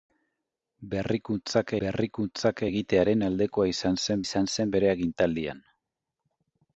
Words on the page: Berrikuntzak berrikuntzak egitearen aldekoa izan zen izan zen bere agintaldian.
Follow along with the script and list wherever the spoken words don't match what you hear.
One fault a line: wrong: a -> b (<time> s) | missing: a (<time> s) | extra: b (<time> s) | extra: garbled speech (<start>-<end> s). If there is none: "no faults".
no faults